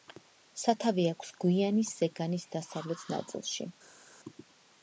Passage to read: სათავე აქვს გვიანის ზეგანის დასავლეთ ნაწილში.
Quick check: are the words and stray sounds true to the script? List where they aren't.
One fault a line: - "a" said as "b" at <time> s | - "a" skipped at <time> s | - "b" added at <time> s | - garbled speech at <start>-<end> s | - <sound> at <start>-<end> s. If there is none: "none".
none